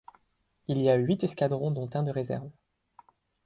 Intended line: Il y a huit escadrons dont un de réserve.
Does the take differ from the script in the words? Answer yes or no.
no